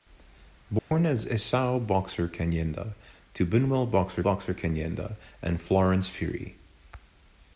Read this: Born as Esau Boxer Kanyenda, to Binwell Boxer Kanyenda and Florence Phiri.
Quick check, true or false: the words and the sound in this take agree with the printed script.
false